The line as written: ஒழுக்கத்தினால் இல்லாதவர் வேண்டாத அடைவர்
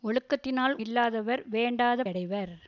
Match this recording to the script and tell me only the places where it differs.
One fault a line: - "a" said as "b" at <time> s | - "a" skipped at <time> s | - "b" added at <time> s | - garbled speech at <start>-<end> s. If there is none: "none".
none